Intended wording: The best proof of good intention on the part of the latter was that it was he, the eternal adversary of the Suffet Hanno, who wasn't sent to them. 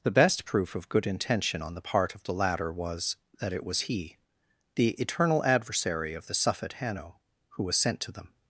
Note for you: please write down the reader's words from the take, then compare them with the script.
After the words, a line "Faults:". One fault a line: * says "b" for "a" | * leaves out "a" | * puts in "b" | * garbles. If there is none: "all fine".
The best proof of good intention on the part of the latter was that it was he, the eternal adversary of the Suffet Hanno, who was sent to them.
Faults:
* says "was" for "wasn't"